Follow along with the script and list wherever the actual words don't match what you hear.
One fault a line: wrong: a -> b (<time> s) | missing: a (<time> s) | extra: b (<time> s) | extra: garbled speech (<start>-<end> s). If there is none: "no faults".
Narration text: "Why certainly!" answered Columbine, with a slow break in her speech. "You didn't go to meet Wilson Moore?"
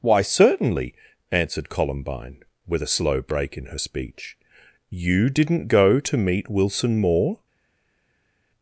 no faults